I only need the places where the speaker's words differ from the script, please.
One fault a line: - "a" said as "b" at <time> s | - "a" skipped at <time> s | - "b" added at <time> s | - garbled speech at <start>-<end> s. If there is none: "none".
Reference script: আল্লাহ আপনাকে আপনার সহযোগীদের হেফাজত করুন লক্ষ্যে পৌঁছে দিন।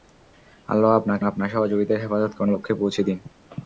none